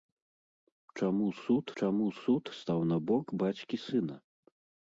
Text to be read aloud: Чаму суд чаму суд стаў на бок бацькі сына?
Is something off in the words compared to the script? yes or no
no